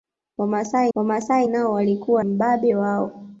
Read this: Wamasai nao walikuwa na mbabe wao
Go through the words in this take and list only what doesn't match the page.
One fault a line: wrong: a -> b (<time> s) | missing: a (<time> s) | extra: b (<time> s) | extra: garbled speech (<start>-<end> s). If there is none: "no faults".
extra: wamasai (0.9 s)
missing: na (2.2 s)